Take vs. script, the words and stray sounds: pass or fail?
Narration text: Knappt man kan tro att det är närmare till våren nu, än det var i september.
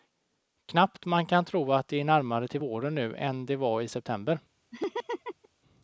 fail